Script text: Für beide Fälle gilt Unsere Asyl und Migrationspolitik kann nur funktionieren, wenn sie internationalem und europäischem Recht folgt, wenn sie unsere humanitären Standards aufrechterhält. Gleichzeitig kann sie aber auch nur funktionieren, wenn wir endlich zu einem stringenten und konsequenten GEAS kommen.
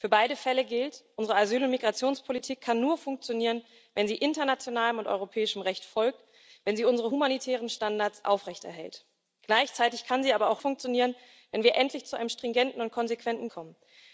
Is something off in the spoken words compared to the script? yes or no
yes